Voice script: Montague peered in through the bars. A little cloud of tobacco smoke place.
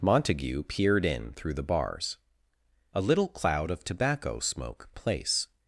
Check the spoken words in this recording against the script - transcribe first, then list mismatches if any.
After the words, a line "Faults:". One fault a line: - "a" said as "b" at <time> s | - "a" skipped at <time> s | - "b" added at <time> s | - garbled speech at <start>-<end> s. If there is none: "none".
Montague peered in through the bars. A little cloud of tobacco smoke place.
Faults:
none